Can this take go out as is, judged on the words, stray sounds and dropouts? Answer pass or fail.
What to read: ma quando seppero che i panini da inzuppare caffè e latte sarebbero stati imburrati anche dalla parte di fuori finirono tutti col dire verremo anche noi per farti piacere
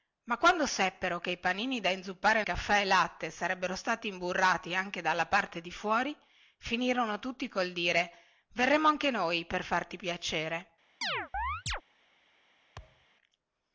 fail